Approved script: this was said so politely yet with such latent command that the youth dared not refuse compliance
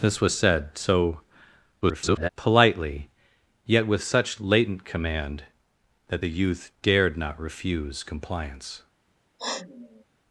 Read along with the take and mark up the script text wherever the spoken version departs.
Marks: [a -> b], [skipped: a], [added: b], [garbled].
this was said so [garbled] politely yet with such latent command that the youth dared not refuse compliance